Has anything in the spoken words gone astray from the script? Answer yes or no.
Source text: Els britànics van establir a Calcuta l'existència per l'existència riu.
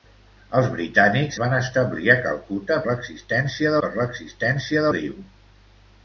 no